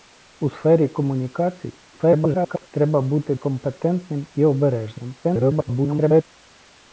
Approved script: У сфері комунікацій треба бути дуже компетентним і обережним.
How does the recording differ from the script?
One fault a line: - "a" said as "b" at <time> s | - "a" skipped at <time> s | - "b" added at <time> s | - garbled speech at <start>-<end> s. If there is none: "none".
- garbled speech at 1.9-2.7 s
- "дуже" skipped at 3.3 s
- garbled speech at 5.2-6.2 s